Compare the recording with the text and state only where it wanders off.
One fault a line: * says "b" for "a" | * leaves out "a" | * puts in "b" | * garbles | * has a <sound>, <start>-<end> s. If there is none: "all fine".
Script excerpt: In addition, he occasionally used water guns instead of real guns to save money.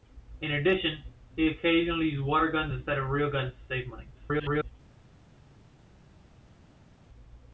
* garbles